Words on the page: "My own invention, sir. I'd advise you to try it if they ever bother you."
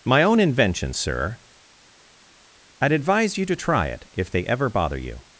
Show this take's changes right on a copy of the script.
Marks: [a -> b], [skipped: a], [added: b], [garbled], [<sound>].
"My own invention, sir. I'd advise you to try it if they ever bother you."